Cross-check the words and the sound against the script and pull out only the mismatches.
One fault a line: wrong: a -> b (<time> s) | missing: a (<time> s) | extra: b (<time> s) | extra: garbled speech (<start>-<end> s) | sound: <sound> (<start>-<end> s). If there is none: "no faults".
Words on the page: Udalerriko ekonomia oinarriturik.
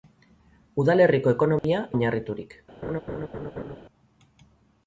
sound: dropout (1.6-1.6 s)
sound: laugh (2.8-3.8 s)